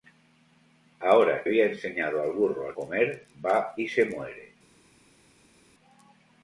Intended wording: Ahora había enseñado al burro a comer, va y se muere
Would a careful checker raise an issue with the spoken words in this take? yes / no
no